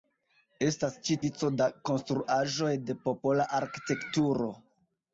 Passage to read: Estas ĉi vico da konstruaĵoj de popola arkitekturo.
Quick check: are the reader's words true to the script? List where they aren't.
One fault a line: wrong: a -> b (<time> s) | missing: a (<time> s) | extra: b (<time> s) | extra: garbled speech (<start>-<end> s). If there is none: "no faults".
no faults